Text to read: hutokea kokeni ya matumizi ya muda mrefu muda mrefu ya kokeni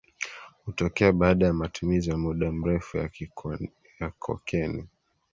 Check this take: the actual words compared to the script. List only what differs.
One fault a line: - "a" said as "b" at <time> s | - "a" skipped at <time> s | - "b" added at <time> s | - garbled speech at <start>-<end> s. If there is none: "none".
- "kokeni" said as "baada" at 1.1 s
- "muda mrefu" skipped at 3.0 s